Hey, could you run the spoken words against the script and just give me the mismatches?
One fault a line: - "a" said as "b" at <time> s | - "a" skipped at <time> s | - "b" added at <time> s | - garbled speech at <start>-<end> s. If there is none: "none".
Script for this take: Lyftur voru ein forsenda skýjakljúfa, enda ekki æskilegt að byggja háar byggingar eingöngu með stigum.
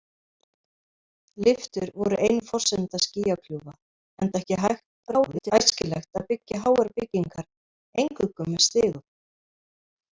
- garbled speech at 5.1-5.5 s